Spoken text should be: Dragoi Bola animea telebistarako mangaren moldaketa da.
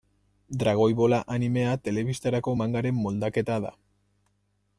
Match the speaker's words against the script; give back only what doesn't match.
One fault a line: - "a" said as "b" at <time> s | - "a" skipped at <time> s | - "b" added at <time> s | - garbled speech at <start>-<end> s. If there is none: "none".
none